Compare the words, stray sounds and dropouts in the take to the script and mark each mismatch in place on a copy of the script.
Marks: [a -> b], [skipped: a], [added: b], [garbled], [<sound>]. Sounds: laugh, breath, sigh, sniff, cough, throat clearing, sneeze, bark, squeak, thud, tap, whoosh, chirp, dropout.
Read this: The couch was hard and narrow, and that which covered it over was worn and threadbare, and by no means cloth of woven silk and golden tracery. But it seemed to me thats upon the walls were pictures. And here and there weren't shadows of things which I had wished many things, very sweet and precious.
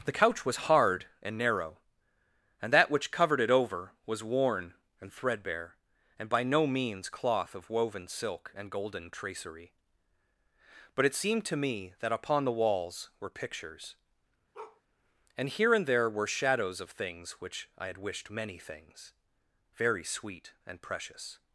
The couch was hard and narrow, and that which covered it over was worn and threadbare, and by no means cloth of woven silk and golden tracery. But it seemed to me [thats -> that] upon the walls were pictures. [bark] And here and there [weren't -> were] shadows of things which I had wished many things, very sweet and precious.